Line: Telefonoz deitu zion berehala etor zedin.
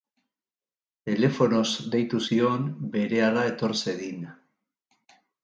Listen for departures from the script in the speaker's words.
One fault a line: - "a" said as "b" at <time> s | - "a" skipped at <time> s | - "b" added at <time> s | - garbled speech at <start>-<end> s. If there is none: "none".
none